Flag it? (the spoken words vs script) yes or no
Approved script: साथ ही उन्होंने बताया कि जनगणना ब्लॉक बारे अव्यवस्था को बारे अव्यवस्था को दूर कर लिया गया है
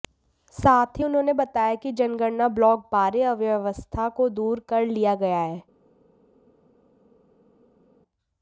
yes